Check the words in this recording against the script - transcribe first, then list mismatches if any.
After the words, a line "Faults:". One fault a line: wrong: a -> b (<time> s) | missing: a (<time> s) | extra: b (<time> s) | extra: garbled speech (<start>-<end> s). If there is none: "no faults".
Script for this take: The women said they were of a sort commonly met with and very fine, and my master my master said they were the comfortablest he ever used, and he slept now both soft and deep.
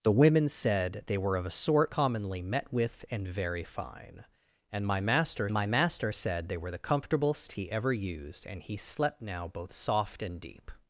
The women said they were of a sort commonly met with and very fine, and my master my master said they were the comfortablest he ever used, and he slept now both soft and deep.
Faults:
no faults